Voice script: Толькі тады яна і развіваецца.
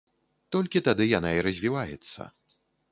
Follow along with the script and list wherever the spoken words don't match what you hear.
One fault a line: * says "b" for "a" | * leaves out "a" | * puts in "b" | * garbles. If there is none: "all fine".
all fine